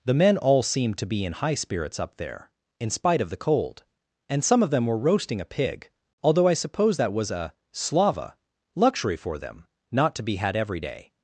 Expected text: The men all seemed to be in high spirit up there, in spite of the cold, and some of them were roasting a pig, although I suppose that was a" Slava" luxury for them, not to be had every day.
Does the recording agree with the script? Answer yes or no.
no